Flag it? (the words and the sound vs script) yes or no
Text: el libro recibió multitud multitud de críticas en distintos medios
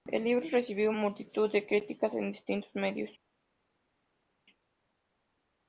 yes